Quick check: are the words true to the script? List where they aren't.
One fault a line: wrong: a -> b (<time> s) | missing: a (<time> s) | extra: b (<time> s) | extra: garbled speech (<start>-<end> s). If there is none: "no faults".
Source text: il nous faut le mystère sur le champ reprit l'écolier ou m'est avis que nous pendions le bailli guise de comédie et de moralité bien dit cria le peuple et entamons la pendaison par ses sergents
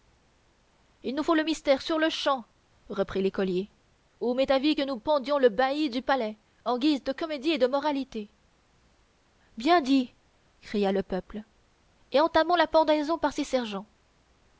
extra: du palais en (5.9 s)